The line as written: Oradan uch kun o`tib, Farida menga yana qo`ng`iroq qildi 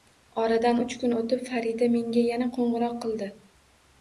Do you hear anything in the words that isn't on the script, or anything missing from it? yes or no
no